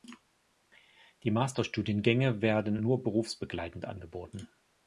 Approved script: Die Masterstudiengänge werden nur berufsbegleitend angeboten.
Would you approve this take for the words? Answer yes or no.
yes